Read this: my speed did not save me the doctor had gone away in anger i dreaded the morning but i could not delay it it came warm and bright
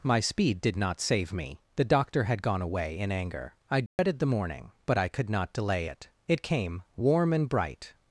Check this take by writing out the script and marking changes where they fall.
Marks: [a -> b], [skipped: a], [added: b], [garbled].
my speed did not save me the doctor had gone away in anger i dreaded the morning but i could not delay it it came warm and bright